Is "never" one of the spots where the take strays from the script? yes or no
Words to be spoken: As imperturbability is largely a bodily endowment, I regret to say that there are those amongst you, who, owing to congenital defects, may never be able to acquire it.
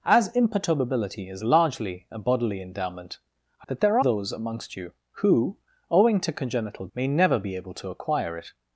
no